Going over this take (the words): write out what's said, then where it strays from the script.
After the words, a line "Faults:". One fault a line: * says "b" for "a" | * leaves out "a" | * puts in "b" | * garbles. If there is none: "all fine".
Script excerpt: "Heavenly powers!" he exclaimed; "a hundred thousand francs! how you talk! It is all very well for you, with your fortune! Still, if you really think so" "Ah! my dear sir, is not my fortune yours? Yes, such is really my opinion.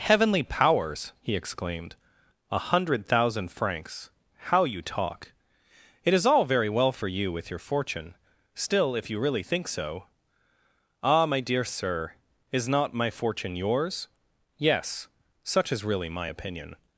"Heavenly powers!" he exclaimed; "a hundred thousand francs! how you talk! It is all very well for you, with your fortune! Still, if you really think so" "Ah! my dear sir, is not my fortune yours? Yes, such is really my opinion.
Faults:
all fine